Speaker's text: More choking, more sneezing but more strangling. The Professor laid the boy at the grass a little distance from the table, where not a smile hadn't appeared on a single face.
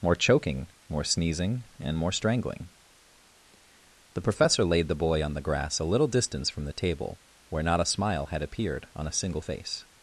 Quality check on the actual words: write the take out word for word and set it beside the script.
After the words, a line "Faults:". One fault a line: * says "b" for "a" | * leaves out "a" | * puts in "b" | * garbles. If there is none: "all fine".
More choking, more sneezing and more strangling. The Professor laid the boy on the grass a little distance from the table, where not a smile had appeared on a single face.
Faults:
* says "and" for "but"
* says "on" for "at"
* says "had" for "hadn't"